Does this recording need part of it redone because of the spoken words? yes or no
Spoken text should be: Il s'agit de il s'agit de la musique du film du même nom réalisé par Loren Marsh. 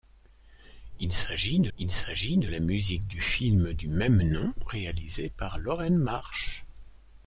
no